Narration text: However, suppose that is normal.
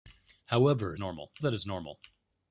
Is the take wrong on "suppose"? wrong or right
wrong